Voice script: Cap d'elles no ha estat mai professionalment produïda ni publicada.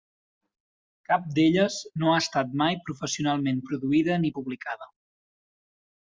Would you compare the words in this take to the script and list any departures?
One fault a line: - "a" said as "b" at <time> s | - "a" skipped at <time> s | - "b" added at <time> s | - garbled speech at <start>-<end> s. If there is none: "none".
none